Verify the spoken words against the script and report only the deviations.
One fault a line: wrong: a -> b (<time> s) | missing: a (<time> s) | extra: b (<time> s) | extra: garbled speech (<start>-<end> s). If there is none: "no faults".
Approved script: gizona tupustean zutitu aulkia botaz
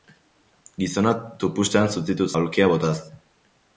no faults